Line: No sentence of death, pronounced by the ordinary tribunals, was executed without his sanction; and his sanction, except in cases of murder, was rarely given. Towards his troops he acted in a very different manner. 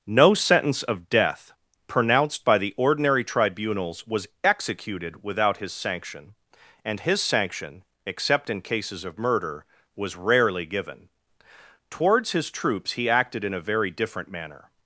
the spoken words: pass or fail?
pass